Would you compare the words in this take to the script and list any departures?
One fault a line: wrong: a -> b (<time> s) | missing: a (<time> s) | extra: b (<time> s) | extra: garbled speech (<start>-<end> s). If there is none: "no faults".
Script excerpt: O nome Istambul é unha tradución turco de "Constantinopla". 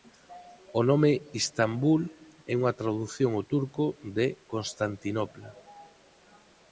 extra: ao (3.3 s)